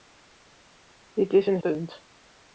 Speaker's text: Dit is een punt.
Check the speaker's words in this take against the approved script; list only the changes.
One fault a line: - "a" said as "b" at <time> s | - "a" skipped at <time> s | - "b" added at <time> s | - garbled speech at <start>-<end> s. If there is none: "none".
none